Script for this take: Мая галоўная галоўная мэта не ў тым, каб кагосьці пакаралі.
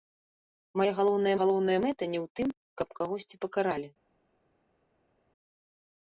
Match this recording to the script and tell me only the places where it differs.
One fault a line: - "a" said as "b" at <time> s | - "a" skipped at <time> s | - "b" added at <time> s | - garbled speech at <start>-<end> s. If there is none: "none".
none